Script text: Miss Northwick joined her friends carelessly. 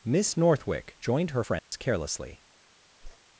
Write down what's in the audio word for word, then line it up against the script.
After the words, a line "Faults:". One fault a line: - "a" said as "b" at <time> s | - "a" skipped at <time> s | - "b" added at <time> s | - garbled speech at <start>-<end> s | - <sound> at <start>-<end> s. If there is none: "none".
Miss Northwick joined her friends carelessly.
Faults:
- dropout at 1.6-1.7 s
- whoosh at 3.0-3.2 s